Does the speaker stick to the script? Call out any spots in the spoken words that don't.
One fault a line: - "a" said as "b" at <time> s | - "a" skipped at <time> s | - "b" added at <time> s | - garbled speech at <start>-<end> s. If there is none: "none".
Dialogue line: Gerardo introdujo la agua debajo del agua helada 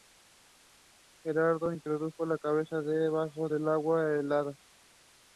- "agua" said as "cabeza" at 2.4 s